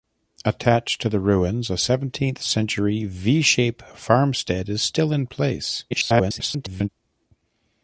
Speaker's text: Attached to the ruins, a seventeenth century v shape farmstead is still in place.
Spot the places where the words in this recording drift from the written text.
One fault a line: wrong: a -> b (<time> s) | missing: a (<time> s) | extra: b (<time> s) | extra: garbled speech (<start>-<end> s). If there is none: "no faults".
extra: garbled speech (5.9-6.9 s)